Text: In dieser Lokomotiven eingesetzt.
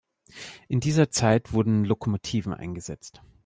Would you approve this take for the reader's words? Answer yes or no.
no